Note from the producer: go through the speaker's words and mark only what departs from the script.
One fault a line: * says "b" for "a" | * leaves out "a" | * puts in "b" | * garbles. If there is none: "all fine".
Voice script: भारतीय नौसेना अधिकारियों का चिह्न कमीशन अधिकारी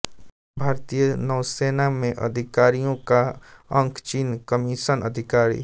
* puts in "में"
* puts in "अंक"